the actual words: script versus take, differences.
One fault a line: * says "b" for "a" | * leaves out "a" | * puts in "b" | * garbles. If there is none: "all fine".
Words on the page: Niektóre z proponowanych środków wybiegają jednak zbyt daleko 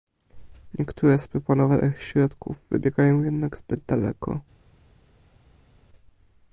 all fine